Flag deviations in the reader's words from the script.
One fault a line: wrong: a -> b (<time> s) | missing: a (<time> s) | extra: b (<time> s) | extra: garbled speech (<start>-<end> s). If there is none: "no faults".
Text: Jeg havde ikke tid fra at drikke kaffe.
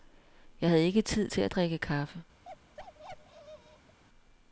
wrong: fra -> til (1.3 s)